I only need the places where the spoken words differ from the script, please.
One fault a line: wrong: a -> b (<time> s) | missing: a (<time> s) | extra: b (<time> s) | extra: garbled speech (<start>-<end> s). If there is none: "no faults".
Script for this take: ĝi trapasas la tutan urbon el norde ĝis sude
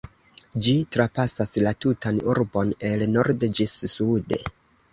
no faults